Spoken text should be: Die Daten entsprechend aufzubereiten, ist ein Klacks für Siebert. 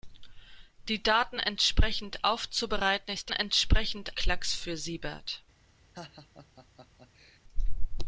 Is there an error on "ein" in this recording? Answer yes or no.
yes